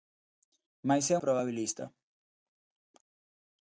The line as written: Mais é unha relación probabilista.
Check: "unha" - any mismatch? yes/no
yes